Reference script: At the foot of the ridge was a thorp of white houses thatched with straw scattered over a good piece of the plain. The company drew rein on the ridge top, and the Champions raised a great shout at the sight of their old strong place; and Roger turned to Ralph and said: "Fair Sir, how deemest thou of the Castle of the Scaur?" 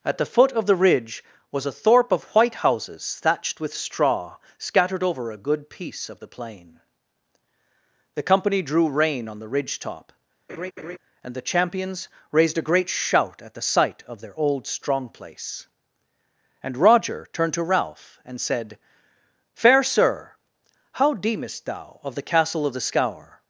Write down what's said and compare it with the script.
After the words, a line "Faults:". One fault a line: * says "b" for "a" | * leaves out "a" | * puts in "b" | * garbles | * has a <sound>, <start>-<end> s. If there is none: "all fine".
At the foot of the ridge was a thorp of white houses thatched with straw scattered over a good piece of the plain. The company drew rein on the ridge top, and the Champions raised a great shout at the sight of their old strong place; and Roger turned to Ralph and said: "Fair Sir, how deemest thou of the Castle of the Scaur?"
Faults:
* has a laugh, 10.5-11.0 s